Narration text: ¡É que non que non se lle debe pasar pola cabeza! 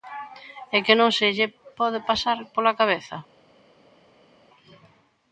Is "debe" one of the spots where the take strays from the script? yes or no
yes